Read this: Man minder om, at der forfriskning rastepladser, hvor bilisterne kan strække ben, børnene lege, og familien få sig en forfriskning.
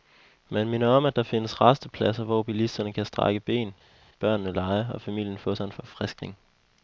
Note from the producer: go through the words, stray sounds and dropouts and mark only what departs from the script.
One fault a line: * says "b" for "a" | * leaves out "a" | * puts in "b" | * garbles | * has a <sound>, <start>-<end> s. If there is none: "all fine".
* says "findes" for "forfriskning"